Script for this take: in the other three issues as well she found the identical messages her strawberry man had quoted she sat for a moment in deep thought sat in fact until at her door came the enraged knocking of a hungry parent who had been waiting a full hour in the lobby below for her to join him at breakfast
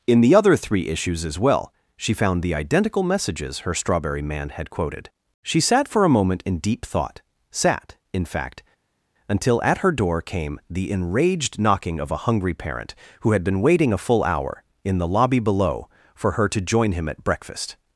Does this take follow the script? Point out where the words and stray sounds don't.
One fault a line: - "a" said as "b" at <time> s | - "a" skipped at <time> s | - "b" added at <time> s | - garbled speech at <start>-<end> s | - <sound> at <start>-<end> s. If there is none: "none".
none